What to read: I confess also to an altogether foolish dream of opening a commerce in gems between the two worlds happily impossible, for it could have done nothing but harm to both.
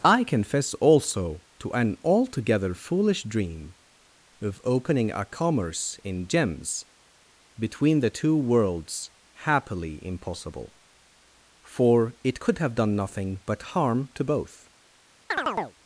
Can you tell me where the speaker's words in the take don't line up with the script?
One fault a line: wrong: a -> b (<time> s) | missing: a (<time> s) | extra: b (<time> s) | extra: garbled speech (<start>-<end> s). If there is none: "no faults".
no faults